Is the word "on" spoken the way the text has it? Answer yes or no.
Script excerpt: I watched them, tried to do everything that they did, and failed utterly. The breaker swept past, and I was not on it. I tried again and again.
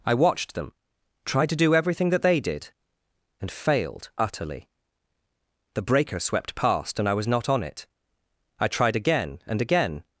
yes